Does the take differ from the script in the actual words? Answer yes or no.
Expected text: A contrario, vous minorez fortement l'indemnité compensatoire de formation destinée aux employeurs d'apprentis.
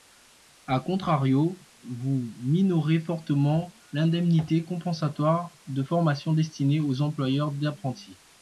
no